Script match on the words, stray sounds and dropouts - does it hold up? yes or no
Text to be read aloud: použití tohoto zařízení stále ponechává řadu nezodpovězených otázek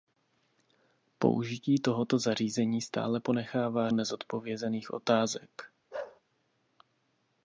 no